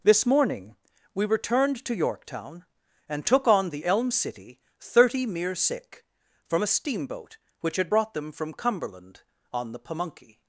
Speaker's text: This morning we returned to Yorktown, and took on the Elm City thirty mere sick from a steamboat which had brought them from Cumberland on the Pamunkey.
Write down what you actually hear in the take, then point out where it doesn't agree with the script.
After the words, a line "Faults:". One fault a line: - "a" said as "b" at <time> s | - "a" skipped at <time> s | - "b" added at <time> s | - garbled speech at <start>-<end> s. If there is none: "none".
This morning we returned to Yorktown, and took on the Elm City thirty mere sick from a steamboat which had brought them from Cumberland on the Pamunkey.
Faults:
none